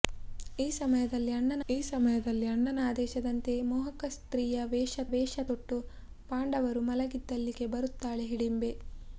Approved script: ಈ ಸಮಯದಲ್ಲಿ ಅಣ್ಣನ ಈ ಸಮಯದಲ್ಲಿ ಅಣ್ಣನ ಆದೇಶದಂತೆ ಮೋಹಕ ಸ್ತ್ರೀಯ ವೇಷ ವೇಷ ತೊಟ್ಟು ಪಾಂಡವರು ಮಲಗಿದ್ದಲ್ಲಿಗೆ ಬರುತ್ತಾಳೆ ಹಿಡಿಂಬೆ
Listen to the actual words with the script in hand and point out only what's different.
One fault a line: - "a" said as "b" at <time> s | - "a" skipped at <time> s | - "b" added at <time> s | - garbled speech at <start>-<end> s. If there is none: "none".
none